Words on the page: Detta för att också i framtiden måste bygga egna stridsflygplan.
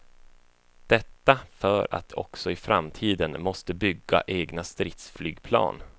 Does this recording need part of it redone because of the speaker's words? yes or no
no